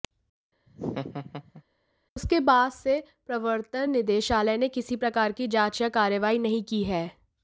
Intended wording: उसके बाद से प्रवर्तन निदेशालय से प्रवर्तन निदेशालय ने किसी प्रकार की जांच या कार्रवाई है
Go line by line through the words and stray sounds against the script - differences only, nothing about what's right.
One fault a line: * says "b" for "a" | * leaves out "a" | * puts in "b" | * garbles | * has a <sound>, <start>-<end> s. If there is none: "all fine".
* has a laugh, 0.7-1.6 s
* leaves out "से प्रवर्तन निदेशालय"
* puts in "नहीं की"